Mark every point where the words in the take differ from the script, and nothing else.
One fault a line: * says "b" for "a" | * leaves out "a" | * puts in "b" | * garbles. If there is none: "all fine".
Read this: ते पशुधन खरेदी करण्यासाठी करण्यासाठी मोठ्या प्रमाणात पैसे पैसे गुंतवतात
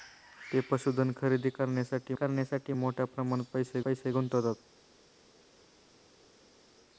all fine